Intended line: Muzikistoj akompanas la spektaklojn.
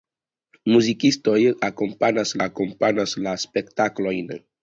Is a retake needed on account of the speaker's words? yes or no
yes